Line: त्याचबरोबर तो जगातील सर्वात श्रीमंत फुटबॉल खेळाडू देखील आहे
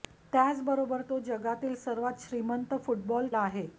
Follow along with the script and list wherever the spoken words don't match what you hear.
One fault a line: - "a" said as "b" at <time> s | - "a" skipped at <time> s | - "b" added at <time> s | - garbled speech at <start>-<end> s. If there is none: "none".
- "खेळाडू देखील" skipped at 3.3 s